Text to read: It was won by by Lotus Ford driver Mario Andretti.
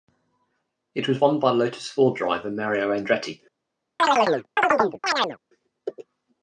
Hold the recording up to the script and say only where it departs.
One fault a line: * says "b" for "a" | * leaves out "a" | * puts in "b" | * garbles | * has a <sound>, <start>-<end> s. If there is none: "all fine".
* leaves out "by"
* has a chirp, 4.0-5.4 s